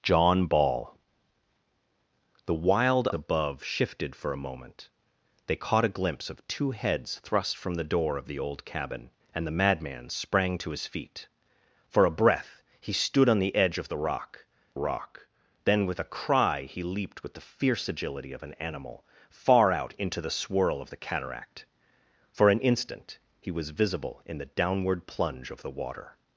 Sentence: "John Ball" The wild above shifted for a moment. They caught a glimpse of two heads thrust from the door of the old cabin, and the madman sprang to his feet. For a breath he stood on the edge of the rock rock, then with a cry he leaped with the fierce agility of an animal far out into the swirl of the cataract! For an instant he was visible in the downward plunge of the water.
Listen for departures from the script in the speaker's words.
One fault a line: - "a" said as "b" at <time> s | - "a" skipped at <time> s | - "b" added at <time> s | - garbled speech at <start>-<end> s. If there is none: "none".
none